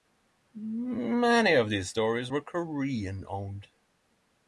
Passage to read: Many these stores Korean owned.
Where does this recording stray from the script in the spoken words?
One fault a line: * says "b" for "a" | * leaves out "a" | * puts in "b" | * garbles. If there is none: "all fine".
* puts in "of"
* puts in "were"